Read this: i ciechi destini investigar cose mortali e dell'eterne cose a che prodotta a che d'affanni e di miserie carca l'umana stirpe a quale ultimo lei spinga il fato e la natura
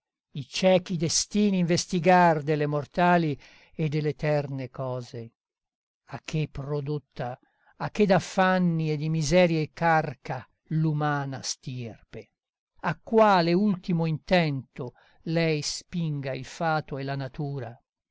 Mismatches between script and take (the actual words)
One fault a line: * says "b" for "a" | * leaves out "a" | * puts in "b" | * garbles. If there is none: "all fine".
* says "delle" for "cose"
* puts in "intento"